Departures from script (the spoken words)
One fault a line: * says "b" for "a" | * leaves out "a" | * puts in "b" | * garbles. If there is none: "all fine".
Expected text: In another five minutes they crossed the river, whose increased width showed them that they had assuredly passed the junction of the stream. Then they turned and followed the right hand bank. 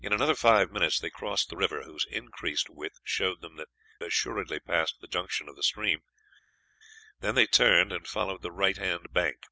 * leaves out "they had"